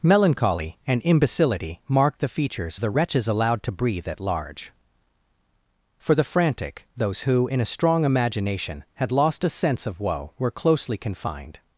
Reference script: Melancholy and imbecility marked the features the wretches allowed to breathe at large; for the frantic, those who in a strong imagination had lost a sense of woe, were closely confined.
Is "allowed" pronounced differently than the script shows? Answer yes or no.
no